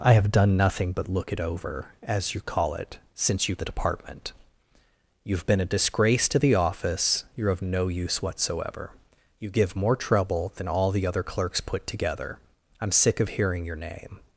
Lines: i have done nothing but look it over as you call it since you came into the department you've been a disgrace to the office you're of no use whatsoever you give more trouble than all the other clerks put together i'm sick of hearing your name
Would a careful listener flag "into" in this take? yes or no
yes